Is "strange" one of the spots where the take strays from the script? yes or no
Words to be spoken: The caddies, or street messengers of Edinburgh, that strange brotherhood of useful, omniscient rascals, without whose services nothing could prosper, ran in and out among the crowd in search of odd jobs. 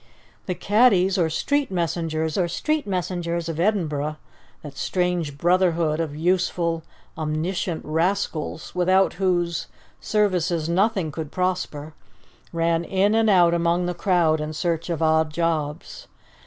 no